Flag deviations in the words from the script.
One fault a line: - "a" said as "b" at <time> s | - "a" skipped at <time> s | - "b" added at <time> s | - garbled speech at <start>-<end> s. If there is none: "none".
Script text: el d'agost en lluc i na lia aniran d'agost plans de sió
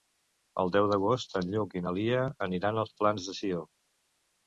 - "deu" added at 0.8 s
- "d'agost" said as "als" at 2.9 s